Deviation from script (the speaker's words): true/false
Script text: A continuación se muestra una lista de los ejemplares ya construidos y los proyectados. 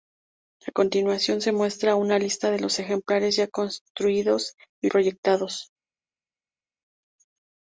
true